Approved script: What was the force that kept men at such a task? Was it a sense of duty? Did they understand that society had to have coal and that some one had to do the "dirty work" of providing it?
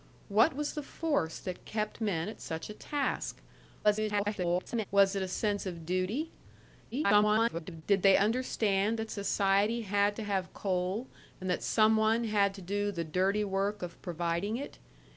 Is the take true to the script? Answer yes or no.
no